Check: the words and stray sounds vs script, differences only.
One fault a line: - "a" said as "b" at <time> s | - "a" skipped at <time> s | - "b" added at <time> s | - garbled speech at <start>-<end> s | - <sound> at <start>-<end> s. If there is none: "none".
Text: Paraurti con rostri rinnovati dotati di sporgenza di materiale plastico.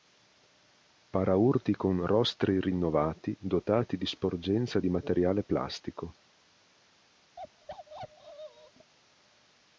- bark at 7.4-8.9 s